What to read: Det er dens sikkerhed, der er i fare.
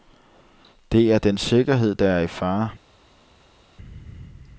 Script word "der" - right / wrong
right